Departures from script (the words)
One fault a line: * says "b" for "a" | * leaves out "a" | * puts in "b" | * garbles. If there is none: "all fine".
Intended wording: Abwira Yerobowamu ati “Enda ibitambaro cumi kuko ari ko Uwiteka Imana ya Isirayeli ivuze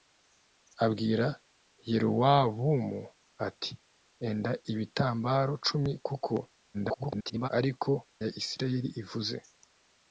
* garbles
* leaves out "Uwiteka Imana"